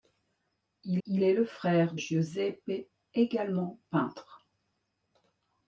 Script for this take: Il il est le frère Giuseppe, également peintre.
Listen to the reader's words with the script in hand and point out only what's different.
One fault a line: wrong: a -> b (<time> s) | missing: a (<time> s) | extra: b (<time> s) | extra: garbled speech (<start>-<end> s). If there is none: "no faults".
no faults